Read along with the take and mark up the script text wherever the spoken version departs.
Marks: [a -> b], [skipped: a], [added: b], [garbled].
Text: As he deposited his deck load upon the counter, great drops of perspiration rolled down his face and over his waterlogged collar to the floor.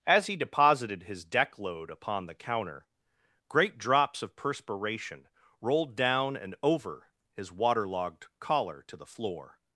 As he deposited his deck load upon the counter, great drops of perspiration rolled down [skipped: his face] and over his waterlogged collar to the floor.